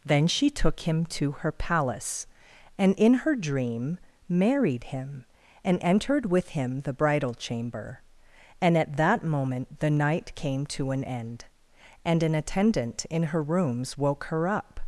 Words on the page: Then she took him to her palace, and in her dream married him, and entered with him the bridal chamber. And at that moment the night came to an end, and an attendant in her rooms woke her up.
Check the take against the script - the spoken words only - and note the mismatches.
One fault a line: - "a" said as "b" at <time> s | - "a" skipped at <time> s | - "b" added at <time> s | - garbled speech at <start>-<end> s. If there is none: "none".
none